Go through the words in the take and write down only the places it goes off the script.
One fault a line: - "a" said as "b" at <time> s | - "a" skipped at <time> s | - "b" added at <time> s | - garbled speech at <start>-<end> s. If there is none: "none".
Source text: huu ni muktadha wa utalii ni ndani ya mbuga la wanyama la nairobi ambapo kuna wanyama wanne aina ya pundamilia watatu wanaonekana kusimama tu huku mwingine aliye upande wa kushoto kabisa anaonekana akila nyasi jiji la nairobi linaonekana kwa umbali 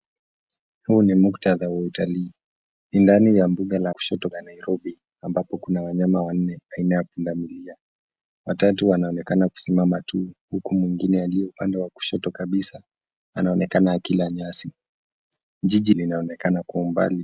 - "wanyama" said as "kushoto" at 3.9 s
- "la nairobi" skipped at 15.9 s